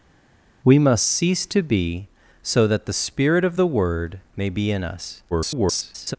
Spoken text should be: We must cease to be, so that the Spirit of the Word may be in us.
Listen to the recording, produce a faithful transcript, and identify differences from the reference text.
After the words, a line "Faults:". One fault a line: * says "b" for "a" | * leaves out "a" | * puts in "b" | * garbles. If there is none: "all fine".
We must cease to be, so that the Spirit of the Word may be in us. [garbled]
Faults:
* garbles